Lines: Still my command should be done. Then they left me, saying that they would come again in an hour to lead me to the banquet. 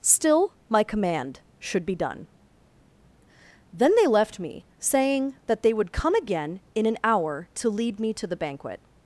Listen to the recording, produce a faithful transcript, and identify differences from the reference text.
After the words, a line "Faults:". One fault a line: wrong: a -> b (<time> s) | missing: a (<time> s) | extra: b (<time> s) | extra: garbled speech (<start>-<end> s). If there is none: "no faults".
Still my command should be done. Then they left me, saying that they would come again in an hour to lead me to the banquet.
Faults:
no faults